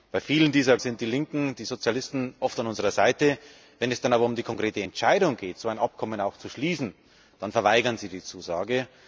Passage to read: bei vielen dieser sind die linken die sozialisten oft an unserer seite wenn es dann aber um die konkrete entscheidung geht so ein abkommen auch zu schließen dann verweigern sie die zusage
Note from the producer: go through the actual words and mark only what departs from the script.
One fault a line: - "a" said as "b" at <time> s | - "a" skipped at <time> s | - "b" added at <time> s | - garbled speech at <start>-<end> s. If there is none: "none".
none